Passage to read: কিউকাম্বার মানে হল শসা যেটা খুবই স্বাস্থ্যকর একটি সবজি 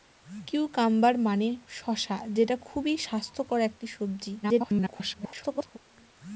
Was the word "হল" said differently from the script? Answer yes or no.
yes